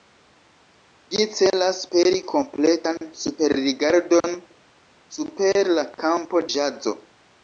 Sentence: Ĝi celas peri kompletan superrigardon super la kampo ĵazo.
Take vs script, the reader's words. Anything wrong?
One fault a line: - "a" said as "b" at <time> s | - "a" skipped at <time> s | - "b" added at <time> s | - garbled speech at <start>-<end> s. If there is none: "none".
none